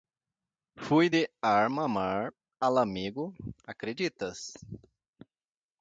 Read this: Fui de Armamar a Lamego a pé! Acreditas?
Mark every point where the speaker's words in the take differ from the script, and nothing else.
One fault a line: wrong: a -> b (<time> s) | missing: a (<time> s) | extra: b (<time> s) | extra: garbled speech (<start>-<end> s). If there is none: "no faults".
missing: a pé (3.3 s)